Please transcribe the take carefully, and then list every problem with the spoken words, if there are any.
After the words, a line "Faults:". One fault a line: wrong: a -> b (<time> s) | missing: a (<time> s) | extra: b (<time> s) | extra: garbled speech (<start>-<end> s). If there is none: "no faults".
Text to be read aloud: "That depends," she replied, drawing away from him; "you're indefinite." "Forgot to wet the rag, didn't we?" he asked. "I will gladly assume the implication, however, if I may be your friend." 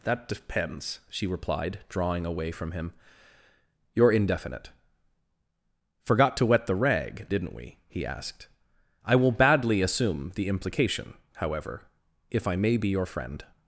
"That depends," she replied, drawing away from him; "you're indefinite." "Forgot to wet the rag, didn't we?" he asked. "I will badly assume the implication, however, if I may be your friend."
Faults:
wrong: gladly -> badly (9.3 s)